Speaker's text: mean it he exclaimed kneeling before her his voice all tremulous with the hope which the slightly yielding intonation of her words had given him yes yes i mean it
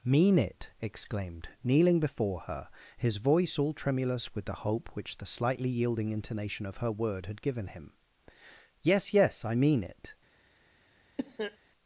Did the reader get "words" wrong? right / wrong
wrong